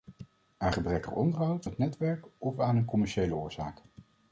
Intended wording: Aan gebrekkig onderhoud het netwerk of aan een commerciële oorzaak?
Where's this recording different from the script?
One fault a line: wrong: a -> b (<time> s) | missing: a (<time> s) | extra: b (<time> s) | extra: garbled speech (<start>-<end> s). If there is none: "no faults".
no faults